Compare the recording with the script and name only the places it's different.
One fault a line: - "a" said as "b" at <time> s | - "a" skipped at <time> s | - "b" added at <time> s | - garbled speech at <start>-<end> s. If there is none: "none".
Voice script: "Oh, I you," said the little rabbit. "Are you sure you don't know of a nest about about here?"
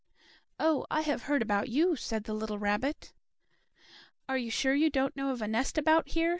- "have heard about" added at 1.0 s
- "about" skipped at 6.1 s